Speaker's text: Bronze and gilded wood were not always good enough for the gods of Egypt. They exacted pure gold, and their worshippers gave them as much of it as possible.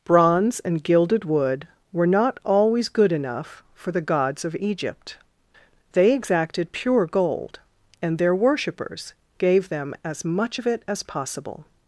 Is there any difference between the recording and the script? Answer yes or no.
no